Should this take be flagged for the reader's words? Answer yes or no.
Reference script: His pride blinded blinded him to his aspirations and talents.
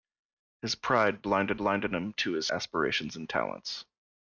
no